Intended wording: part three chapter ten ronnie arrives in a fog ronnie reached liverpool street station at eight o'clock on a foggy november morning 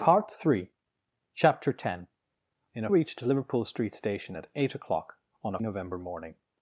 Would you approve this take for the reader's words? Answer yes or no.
no